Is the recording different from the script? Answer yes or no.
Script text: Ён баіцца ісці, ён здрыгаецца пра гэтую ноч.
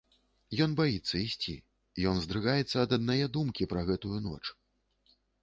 yes